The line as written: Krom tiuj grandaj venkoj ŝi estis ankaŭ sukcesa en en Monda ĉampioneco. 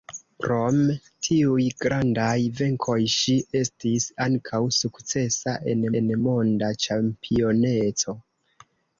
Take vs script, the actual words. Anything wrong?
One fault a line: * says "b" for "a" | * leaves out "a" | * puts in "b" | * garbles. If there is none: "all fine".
all fine